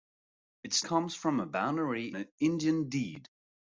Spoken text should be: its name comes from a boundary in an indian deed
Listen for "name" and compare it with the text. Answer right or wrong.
wrong